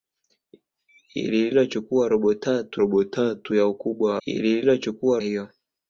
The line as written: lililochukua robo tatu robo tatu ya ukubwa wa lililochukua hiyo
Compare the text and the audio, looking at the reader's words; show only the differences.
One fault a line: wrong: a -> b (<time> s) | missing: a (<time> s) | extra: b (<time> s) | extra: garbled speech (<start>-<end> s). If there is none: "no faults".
no faults